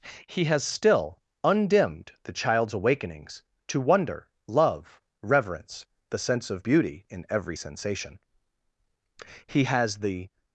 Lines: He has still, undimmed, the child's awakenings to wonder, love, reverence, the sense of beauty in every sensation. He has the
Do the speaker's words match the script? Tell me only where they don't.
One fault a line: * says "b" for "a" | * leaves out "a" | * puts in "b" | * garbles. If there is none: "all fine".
all fine